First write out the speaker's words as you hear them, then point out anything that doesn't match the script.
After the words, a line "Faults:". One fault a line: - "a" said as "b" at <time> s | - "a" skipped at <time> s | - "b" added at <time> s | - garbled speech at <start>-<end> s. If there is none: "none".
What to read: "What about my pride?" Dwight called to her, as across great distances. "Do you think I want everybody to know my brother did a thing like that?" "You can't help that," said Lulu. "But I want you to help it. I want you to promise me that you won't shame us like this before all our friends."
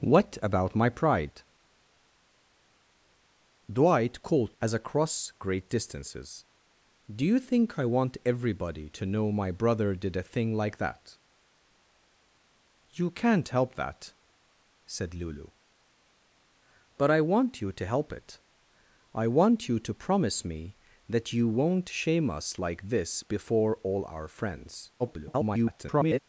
"What about my pride?" Dwight called as across great distances. "Do you think I want everybody to know my brother did a thing like that?" "You can't help that," said Lulu. "But I want you to help it. I want you to promise me that you won't shame us like this before all our friends." [garbled]
Faults:
- "to her" skipped at 4.5 s
- garbled speech at 25.0-26.2 s